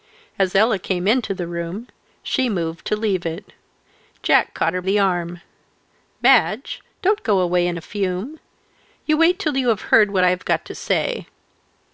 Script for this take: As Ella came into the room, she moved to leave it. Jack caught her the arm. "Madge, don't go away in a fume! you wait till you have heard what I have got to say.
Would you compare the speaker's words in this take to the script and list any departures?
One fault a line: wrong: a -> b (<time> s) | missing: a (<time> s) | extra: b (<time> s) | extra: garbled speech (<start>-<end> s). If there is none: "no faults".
no faults